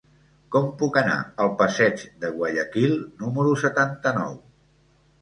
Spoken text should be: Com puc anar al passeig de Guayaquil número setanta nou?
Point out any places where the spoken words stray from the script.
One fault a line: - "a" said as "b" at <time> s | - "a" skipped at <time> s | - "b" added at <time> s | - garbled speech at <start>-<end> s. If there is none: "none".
none